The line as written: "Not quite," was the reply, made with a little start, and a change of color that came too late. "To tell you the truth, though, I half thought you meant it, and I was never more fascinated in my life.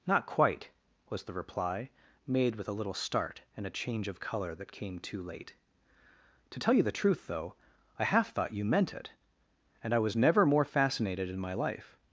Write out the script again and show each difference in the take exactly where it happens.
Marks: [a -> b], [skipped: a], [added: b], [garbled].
"Not quite," was the reply, made with a little start, and a change of color that came too late. "To tell you the truth, though, I half thought you meant it, and I was never more fascinated in my life.